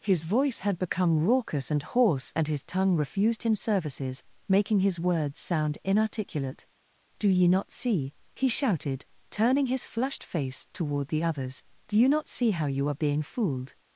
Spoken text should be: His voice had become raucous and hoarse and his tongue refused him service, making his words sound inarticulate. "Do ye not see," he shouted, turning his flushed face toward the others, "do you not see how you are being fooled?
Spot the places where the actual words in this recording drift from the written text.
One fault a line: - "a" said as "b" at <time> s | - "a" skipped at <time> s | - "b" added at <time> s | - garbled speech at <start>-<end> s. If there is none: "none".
- "service" said as "services" at 3.5 s